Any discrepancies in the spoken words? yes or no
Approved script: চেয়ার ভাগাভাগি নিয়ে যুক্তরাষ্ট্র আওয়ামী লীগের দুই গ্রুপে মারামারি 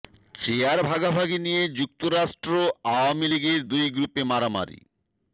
no